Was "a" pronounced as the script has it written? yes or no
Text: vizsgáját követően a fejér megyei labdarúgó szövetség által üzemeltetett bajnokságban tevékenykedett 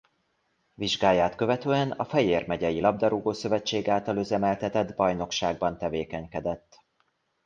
yes